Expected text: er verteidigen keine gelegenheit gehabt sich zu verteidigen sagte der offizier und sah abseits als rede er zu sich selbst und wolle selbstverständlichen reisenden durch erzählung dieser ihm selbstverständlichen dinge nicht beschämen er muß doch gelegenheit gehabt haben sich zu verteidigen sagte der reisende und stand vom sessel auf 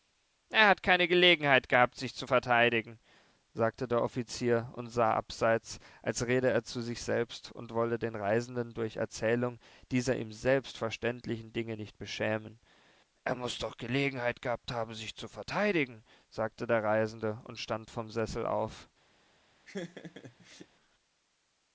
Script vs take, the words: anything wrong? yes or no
yes